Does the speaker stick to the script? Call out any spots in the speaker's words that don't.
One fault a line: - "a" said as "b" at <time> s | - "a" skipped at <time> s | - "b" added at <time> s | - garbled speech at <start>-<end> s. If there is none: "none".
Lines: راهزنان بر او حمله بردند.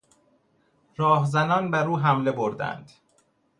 none